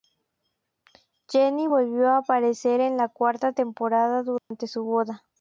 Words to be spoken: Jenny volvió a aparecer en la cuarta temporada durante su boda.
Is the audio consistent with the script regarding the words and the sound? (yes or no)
no